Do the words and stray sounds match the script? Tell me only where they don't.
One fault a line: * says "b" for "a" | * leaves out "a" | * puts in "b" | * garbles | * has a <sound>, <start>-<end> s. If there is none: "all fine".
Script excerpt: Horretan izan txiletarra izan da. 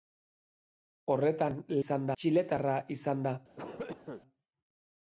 * has a cough, 3.6-4.2 s